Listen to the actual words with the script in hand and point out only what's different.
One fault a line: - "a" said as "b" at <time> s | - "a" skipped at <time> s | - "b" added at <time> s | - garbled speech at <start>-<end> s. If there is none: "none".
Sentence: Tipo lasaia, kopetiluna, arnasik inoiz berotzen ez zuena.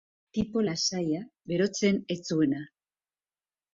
- "kopetiluna arnasik inoiz" skipped at 1.2 s